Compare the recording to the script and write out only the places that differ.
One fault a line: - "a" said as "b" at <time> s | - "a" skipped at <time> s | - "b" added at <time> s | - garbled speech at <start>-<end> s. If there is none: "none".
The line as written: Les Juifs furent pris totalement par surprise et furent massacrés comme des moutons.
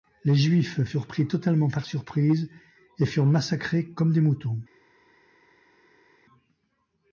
none